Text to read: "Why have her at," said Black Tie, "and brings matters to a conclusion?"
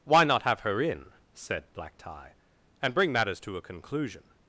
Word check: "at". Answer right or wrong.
wrong